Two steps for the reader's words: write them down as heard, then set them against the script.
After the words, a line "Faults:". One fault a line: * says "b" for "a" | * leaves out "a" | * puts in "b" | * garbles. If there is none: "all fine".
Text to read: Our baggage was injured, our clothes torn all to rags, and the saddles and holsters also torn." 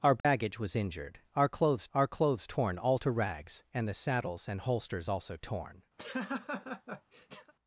Our baggage was injured, our clothes our clothes torn all to rags, and the saddles and holsters also torn."
Faults:
* puts in "our clothes"